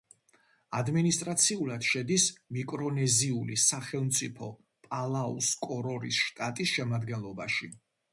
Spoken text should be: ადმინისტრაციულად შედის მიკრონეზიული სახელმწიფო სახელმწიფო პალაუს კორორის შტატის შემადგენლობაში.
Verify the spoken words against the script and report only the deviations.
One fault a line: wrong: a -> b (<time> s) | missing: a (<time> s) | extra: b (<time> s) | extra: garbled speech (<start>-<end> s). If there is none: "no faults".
missing: სახელმწიფო (4.5 s)